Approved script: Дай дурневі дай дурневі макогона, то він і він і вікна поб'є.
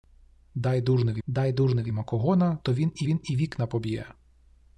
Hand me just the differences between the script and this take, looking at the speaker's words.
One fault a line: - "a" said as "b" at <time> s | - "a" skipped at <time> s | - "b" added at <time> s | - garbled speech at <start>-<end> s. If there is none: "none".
none